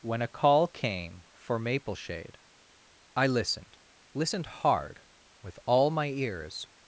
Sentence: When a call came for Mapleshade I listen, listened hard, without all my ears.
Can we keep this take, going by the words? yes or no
no